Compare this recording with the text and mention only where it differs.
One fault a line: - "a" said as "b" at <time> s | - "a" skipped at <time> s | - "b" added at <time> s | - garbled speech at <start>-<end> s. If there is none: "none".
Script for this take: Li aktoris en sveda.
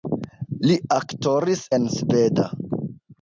none